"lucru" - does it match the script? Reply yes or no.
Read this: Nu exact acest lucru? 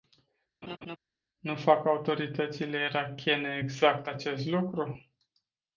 yes